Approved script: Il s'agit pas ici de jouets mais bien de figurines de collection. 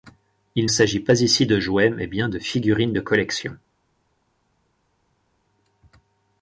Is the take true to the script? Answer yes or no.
yes